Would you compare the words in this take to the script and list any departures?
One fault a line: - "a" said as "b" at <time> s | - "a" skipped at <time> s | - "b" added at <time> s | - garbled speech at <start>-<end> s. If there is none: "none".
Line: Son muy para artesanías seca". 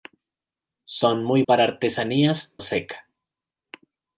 none